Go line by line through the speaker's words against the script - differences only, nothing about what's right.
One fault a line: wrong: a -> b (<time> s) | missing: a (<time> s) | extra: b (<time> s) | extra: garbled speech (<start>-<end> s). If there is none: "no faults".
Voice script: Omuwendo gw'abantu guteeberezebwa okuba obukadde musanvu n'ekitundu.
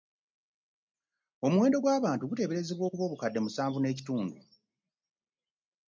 no faults